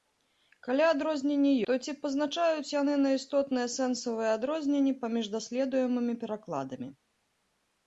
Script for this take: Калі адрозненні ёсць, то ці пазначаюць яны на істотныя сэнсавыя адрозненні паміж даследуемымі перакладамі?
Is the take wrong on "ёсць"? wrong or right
wrong